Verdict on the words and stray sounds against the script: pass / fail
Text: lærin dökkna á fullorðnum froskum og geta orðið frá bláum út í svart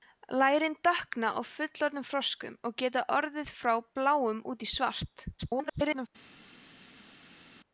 fail